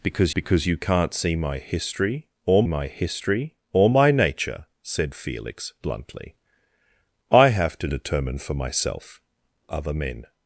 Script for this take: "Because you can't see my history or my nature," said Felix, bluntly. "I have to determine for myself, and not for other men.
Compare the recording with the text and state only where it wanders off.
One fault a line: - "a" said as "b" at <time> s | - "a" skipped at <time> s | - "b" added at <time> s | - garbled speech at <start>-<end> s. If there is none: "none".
- "because" added at 0.3 s
- "history or my" added at 2.9 s
- "and not for" skipped at 9.2 s